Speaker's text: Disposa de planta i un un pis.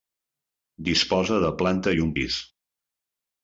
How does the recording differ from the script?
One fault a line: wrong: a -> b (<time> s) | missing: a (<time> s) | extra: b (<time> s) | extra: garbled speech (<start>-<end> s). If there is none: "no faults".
missing: un (2.2 s)